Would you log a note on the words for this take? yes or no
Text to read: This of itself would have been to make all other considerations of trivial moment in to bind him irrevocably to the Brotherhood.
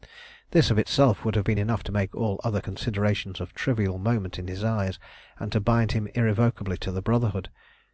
yes